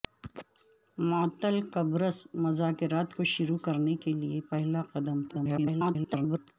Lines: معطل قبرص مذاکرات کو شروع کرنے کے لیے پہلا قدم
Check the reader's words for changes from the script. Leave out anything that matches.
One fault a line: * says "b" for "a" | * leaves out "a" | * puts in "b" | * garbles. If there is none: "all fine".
* garbles